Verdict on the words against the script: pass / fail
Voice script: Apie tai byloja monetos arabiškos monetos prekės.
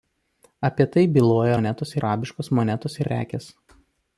pass